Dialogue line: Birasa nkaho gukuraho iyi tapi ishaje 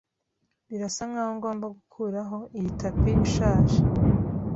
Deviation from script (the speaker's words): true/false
true